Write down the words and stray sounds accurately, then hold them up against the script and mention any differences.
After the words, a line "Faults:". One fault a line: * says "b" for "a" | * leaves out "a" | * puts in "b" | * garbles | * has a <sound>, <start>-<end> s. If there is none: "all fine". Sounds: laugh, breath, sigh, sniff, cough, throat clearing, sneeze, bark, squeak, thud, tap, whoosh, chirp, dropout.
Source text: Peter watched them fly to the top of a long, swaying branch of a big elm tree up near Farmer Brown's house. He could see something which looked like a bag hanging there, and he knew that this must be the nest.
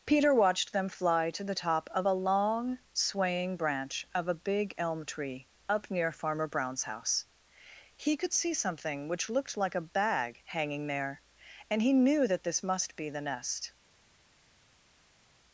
Peter watched them fly to the top of a long, swaying branch of a big elm tree up near Farmer Brown's house. He could see something which looked like a bag hanging there, and he knew that this must be the nest.
Faults:
all fine